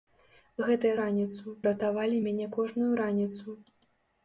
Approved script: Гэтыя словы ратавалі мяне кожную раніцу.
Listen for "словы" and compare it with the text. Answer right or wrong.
wrong